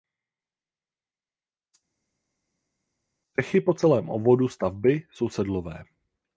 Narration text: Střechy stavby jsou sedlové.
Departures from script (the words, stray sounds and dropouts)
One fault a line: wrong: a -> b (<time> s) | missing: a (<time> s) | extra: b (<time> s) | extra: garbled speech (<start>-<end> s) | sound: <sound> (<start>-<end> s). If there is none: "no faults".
extra: po celém obvodu (3.6 s)